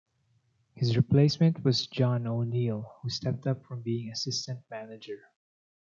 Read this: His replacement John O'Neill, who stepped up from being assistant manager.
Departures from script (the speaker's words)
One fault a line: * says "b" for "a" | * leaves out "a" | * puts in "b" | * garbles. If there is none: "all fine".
* puts in "was"